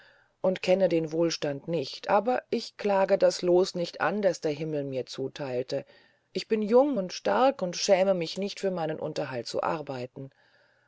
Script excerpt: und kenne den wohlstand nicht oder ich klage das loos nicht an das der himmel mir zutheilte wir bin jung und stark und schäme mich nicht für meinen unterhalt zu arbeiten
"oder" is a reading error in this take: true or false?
true